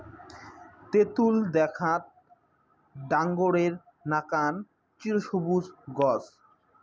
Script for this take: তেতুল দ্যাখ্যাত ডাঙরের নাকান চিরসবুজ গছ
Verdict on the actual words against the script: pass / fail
pass